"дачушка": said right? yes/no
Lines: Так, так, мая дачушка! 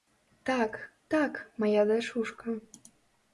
yes